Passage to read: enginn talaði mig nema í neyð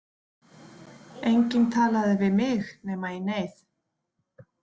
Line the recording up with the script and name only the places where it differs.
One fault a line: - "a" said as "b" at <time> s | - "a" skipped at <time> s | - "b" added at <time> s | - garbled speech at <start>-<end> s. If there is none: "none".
- "við" added at 2.2 s